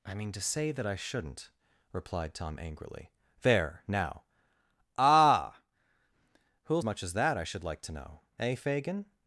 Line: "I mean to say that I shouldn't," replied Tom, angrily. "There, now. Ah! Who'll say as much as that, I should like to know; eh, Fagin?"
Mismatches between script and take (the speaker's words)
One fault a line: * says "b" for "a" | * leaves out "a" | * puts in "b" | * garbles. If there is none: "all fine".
* leaves out "say as"